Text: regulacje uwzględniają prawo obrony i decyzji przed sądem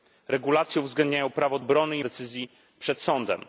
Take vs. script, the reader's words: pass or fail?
pass